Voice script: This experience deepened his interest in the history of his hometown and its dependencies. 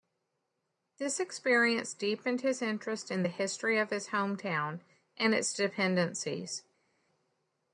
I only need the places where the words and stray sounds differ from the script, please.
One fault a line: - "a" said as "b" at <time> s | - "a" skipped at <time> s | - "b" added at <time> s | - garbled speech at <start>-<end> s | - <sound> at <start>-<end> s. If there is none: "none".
none